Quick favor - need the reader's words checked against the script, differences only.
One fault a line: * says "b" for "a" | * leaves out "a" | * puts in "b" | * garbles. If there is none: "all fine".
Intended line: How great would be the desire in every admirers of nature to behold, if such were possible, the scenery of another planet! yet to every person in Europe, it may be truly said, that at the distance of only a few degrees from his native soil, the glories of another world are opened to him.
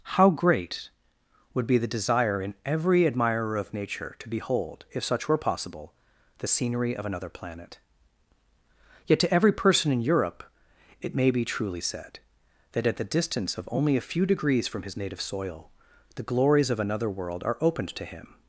* says "admirer" for "admirers"